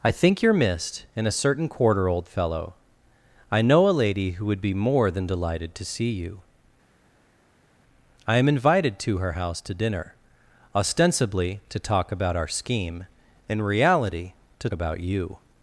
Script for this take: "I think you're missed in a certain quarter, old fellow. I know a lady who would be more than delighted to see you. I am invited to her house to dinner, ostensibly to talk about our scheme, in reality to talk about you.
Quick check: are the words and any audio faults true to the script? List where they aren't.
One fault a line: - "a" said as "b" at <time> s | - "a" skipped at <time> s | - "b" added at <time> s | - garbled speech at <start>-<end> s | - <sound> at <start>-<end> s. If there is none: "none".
- "talk" skipped at 14.7 s